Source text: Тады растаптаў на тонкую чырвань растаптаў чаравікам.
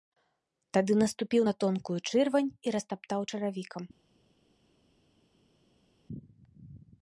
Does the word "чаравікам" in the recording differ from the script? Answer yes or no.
no